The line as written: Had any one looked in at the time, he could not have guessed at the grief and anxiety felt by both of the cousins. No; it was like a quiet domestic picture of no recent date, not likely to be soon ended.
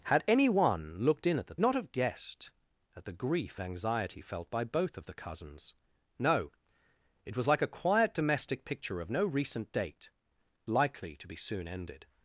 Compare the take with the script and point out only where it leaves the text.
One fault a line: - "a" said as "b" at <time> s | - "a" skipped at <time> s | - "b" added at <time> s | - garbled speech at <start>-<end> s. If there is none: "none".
- "time he could" skipped at 1.6 s
- "and" skipped at 3.6 s
- "not" skipped at 10.1 s